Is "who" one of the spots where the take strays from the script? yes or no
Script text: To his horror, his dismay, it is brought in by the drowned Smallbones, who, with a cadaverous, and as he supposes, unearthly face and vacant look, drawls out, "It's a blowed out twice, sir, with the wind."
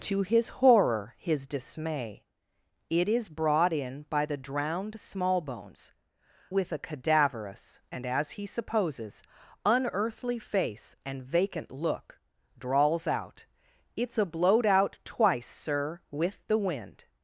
yes